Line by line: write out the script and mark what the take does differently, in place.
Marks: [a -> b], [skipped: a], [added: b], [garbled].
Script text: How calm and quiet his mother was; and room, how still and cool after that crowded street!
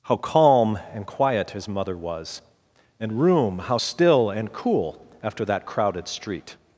How calm and quiet his mother was; and room, how still and cool after that crowded street!